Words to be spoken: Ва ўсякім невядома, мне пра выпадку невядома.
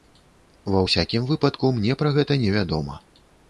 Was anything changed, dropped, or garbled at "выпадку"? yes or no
yes